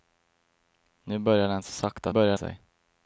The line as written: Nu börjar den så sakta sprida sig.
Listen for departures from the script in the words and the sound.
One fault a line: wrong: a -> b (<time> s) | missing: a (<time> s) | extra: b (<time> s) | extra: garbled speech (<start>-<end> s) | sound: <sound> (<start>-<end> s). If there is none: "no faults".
wrong: sprida -> börjar (2.1 s)